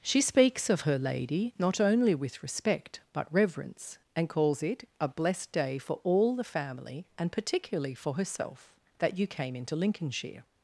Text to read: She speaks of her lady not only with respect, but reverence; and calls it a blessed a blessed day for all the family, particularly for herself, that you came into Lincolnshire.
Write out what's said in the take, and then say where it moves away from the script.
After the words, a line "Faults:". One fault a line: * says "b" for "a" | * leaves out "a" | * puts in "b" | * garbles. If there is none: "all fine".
She speaks of her lady not only with respect, but reverence; and calls it a blessed day for all the family, and particularly for herself, that you came into Lincolnshire.
Faults:
* leaves out "a blessed"
* puts in "and"